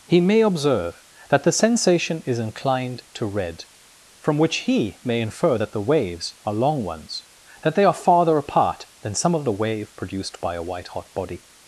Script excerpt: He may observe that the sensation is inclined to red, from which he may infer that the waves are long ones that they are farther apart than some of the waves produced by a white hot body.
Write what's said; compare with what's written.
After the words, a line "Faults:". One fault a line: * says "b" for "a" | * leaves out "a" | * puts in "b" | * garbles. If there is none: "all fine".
He may observe that the sensation is inclined to red, from which he may infer that the waves are long ones that they are farther apart than some of the wave produced by a white hot body.
Faults:
* says "wave" for "waves"